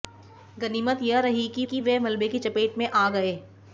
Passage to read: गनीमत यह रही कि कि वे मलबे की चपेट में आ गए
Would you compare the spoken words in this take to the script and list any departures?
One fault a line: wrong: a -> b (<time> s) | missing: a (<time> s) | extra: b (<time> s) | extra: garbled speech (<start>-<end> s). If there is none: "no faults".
no faults